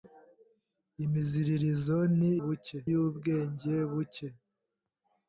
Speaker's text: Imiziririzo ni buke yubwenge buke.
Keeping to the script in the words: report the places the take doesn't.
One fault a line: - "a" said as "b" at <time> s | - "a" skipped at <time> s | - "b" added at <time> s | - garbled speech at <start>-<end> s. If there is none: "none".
none